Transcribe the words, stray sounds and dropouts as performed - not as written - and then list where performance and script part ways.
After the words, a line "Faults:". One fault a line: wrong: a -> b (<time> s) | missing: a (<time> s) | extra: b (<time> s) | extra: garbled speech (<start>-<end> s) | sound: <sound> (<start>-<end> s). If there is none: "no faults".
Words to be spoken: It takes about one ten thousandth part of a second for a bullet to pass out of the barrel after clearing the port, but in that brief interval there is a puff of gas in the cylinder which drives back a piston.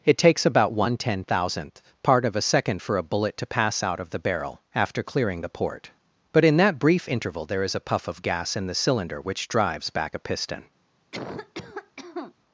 It takes about one ten thousandth part of a second for a bullet to pass out of the barrel after clearing the port, but in that brief interval there is a puff of gas in the cylinder which drives back a piston.
Faults:
sound: cough (11.1-12.3 s)